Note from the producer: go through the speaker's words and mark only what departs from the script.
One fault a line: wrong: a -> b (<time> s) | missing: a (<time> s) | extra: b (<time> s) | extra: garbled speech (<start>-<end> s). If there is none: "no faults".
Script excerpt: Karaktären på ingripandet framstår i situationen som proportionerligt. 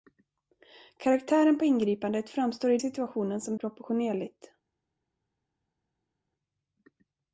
no faults